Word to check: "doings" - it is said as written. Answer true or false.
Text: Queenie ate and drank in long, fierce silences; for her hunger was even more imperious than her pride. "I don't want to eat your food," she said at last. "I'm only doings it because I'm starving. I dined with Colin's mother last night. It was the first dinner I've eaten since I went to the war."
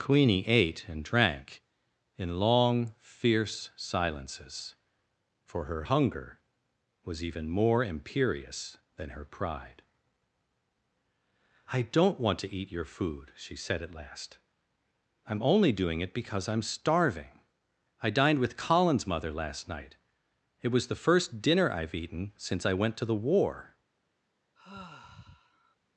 false